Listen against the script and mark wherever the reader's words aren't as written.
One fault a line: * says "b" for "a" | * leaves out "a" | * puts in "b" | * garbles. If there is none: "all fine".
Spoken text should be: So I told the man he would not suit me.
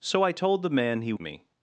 * leaves out "would not suit"